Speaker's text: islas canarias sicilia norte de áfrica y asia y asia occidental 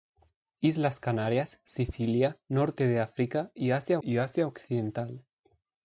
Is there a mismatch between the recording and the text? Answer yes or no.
no